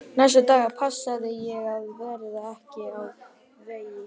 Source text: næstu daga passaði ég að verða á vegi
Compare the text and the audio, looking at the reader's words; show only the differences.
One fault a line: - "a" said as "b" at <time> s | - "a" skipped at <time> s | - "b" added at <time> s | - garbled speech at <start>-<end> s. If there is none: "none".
- "ekki" added at 2.5 s